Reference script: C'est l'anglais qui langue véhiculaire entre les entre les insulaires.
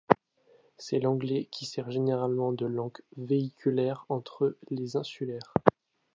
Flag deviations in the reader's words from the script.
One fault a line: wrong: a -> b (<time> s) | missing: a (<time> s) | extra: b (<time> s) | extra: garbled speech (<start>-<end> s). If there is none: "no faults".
extra: sert généralement de (1.7 s)
missing: entre les (4.9 s)